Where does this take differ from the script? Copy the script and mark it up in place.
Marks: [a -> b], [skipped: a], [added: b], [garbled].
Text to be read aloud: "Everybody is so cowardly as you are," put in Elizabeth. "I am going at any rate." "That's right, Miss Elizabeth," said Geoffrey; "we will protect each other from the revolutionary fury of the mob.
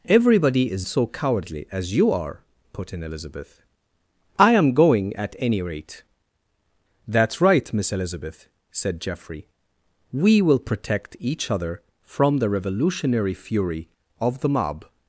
"Everybody is so cowardly as you are," put in Elizabeth. "I am going at any rate." "That's right, Miss Elizabeth," said Geoffrey; "we will protect each other from the revolutionary fury of the mob.